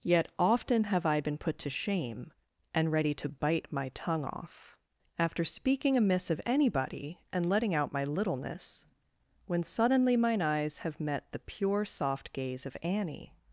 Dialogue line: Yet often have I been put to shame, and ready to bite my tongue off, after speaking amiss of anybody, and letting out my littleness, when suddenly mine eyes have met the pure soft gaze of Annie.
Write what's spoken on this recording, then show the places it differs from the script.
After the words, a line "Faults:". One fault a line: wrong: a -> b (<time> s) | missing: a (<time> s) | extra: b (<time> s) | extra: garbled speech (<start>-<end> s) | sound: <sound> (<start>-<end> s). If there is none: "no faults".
Yet often have I been put to shame, and ready to bite my tongue off, after speaking amiss of anybody, and letting out my littleness, when suddenly mine eyes have met the pure soft gaze of Annie.
Faults:
no faults